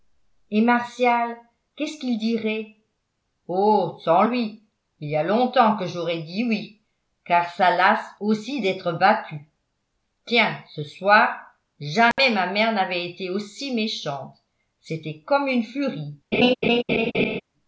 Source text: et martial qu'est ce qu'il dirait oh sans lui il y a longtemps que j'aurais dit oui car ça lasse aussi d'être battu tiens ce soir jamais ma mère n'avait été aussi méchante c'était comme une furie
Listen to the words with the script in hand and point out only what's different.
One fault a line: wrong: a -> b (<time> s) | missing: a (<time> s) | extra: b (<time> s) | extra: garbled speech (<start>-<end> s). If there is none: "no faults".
no faults